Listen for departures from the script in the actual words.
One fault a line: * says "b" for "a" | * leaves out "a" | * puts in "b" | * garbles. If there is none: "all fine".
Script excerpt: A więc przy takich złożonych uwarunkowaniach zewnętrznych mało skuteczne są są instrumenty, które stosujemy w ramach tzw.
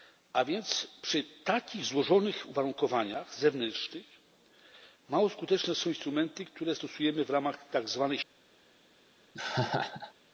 * leaves out "są"